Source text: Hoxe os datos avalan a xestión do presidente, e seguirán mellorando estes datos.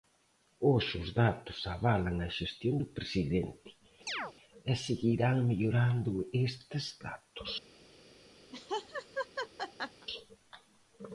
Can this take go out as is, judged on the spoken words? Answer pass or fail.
pass